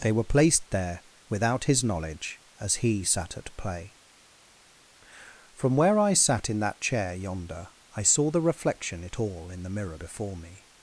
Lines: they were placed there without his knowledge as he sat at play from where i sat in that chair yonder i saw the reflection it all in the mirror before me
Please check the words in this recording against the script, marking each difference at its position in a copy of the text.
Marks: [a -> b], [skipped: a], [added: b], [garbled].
they were placed there without his knowledge as he sat at play from where i sat in that chair yonder i saw the reflection it all in the mirror before me